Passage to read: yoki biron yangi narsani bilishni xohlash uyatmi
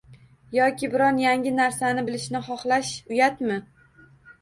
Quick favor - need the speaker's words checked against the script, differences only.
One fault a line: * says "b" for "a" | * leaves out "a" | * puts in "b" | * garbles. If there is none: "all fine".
all fine